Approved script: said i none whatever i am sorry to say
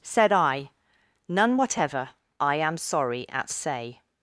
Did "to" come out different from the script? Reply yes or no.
yes